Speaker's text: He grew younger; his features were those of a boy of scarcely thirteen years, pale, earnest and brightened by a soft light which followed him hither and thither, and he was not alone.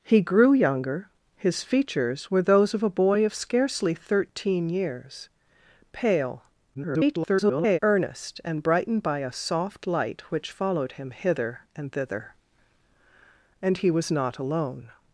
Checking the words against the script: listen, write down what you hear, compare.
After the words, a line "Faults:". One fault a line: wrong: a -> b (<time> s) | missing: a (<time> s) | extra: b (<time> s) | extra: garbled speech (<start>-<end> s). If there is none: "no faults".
He grew younger; his features were those of a boy of scarcely thirteen years, pale, [garbled] earnest and brightened by a soft light which followed him hither and thither, and he was not alone.
Faults:
extra: garbled speech (6.7-7.8 s)